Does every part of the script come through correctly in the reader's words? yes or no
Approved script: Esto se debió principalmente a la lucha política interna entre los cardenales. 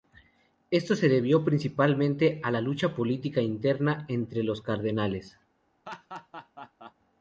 yes